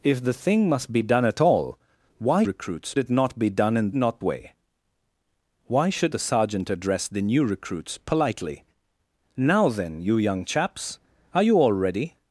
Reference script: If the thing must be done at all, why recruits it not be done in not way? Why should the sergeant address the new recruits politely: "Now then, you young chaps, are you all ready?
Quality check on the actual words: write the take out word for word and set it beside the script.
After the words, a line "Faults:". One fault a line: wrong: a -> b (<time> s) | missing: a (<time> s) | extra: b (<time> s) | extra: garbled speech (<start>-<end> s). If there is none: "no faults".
If the thing must be done at all, why recruits it not be done in not way? Why should the sergeant address the new recruits politely: "Now then, you young chaps, are you all ready?
Faults:
no faults